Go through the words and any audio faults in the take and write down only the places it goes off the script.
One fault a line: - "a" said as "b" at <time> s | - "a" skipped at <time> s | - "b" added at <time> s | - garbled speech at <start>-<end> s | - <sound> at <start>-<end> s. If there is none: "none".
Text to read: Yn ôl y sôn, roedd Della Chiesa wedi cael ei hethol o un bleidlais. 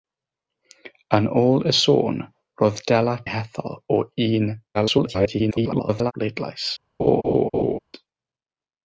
- "Chiesa wedi cael" skipped at 3.1 s
- garbled speech at 4.7-6.1 s
- laugh at 7.0-7.8 s